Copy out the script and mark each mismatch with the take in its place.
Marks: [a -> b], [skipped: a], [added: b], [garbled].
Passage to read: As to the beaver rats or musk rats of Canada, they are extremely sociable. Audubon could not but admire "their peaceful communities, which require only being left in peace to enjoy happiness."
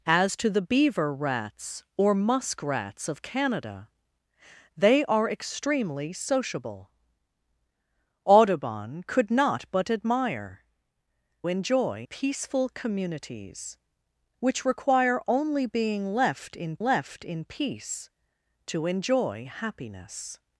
As to the beaver rats or musk rats of Canada, they are extremely sociable. Audubon could not but admire ["their -> enjoy] peaceful communities, which require only being left in [added: left in] peace to enjoy happiness."